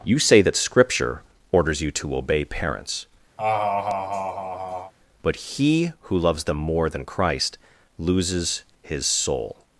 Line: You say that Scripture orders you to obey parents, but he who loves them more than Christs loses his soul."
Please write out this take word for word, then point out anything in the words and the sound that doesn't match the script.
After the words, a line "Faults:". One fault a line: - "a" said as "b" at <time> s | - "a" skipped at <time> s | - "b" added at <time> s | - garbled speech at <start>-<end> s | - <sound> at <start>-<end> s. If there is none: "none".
You say that Scripture orders you to obey parents, but he who loves them more than Christ loses his soul."
Faults:
- laugh at 3.4-4.9 s
- "Christs" said as "Christ" at 7.0 s